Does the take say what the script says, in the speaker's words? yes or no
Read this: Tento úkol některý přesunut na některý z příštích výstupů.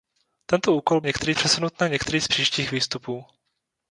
yes